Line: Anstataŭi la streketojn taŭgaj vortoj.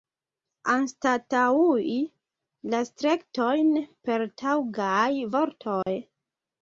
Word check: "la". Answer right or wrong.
right